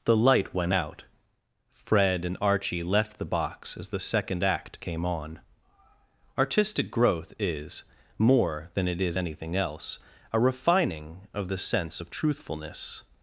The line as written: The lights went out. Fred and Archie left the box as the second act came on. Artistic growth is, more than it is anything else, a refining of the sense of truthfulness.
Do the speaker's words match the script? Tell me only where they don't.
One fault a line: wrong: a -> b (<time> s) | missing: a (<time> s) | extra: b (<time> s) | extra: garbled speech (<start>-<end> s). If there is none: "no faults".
wrong: lights -> light (0.2 s)